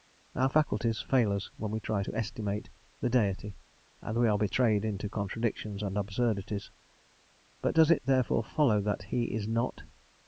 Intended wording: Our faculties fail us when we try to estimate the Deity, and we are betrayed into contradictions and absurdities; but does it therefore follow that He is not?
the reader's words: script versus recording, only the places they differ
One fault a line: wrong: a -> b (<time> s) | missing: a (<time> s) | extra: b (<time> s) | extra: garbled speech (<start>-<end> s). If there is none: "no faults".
no faults